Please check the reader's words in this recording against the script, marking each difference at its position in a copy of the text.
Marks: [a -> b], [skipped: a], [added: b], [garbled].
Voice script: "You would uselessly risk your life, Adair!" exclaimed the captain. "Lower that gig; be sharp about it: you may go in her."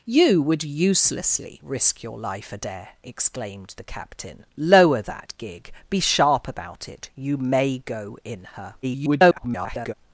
"You would uselessly risk your life, Adair!" exclaimed the captain. "Lower that gig; be sharp about it: you may go in her." [garbled]